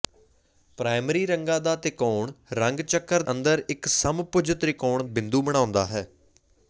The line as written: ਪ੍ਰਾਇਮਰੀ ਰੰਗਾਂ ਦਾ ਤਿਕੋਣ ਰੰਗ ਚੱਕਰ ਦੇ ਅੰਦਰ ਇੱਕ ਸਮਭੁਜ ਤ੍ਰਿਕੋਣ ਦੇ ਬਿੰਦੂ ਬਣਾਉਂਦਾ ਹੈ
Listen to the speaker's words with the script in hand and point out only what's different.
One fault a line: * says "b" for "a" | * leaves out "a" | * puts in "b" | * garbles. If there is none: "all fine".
* leaves out "ਦੇ"
* leaves out "ਦੇ"